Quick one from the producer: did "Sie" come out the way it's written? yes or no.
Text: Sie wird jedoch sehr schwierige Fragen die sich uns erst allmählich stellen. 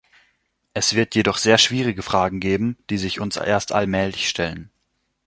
no